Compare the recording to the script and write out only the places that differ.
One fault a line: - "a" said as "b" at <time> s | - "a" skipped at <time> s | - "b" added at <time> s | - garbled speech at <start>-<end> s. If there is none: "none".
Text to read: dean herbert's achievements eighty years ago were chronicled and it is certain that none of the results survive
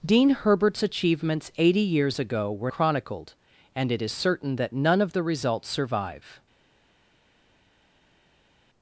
none